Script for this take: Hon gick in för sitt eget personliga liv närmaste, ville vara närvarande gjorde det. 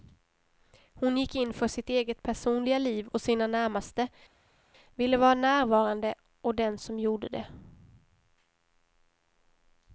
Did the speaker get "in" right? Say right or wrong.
right